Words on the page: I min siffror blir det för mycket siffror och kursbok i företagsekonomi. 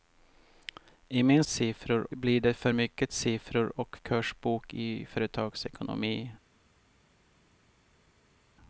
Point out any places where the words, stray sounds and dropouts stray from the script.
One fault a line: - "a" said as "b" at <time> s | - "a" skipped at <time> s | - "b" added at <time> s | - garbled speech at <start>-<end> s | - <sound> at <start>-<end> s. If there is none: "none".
none